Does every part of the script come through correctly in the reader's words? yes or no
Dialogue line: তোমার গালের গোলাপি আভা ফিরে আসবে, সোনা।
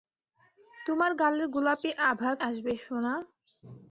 no